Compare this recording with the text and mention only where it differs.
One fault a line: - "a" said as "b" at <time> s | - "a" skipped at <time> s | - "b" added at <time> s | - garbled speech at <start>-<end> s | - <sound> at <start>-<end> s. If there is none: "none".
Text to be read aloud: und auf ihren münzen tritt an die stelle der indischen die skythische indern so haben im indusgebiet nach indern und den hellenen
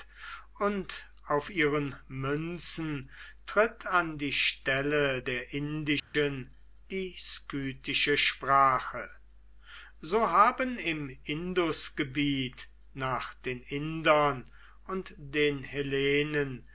- dropout at 6.0-6.1 s
- "indern" said as "sprache" at 8.2 s
- "den" added at 13.3 s